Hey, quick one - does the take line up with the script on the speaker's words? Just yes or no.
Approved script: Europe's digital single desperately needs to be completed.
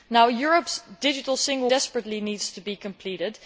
yes